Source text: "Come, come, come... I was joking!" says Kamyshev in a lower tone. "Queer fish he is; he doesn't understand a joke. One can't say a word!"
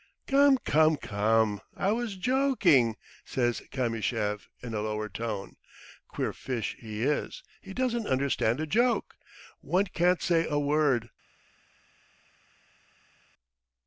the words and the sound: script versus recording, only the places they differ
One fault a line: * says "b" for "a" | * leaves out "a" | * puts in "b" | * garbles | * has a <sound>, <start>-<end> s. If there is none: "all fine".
all fine